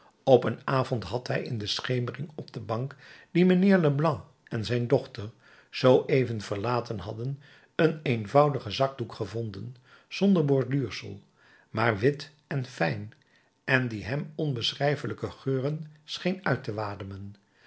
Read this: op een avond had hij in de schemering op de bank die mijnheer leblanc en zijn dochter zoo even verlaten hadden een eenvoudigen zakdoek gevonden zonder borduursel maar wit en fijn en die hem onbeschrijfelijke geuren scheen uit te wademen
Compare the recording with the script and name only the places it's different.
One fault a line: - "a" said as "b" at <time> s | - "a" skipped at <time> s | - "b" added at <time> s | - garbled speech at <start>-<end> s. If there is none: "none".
none